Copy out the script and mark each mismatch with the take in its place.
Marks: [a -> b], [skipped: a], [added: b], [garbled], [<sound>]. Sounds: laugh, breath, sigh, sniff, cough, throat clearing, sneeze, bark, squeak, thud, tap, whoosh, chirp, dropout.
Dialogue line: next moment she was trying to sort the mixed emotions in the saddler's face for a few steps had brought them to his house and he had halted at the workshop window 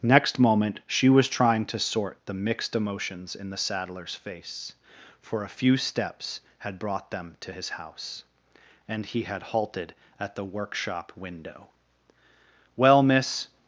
next moment she was trying to sort the mixed emotions in the saddler's face for a few steps had brought them to his house and he had halted at the workshop window [added: well miss]